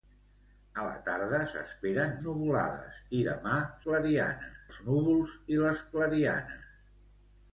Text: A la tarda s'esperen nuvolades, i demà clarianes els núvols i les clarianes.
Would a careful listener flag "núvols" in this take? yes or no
no